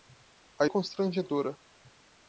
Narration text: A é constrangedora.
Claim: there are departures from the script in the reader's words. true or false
false